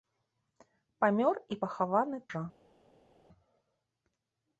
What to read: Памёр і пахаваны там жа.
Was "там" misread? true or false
true